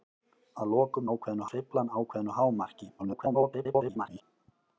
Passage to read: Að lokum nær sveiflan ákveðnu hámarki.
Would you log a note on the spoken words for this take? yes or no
yes